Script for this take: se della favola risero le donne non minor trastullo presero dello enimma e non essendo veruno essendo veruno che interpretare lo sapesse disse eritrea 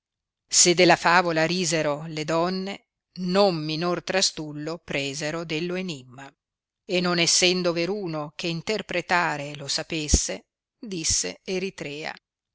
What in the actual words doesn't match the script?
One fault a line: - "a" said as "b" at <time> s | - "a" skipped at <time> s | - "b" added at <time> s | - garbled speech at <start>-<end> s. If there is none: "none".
- "essendo veruno" skipped at 8.3 s